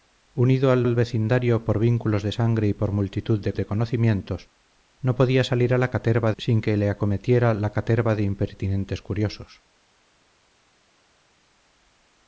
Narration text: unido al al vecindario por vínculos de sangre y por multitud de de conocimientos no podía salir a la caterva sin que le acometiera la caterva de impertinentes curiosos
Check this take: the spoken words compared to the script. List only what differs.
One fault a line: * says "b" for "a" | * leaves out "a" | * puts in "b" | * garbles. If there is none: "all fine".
all fine